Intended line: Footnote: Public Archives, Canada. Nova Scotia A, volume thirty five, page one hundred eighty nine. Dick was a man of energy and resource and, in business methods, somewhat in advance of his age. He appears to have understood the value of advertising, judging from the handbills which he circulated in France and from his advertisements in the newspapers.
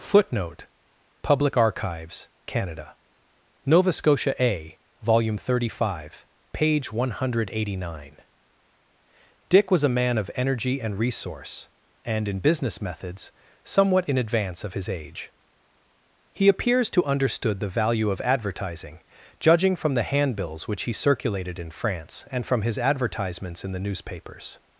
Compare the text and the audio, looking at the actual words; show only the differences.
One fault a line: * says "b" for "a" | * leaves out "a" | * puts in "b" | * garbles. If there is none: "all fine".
* leaves out "have"